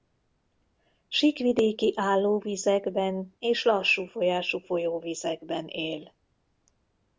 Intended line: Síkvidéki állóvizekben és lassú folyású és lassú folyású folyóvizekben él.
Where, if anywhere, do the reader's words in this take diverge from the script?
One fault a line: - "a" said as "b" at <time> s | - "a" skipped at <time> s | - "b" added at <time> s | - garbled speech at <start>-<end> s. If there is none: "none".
- "és lassú folyású" skipped at 4.6 s